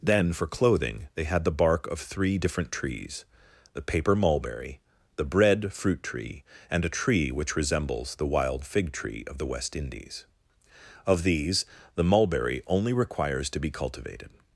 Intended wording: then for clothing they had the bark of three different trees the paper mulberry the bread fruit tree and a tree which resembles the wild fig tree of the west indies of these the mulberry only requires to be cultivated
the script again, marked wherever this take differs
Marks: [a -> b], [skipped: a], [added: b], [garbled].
then for clothing they had the bark of three different trees the paper mulberry the bread fruit tree and a tree which resembles the wild fig tree of the west indies of these the mulberry only requires to be cultivated